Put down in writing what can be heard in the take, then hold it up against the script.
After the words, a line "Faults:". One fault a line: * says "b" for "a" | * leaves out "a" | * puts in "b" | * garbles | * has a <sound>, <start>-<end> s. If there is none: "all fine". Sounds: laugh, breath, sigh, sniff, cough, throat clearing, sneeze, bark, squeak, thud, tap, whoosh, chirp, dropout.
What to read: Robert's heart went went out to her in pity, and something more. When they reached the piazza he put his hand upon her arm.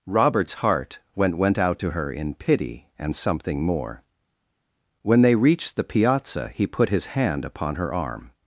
Robert's heart went went out to her in pity, and something more. When they reached the piazza he put his hand upon her arm.
Faults:
all fine